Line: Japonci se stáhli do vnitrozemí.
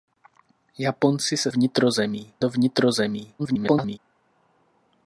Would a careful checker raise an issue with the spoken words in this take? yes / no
yes